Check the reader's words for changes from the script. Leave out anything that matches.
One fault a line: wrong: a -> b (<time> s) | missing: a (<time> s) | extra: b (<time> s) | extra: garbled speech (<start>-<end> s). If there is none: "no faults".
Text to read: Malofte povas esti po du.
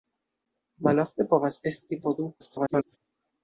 extra: garbled speech (2.4-3.0 s)